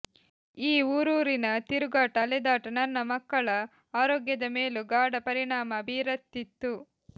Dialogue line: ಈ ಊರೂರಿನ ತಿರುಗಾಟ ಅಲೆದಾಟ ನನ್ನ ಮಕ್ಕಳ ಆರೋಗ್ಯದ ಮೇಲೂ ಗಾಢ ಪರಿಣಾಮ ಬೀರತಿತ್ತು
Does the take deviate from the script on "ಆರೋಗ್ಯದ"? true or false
false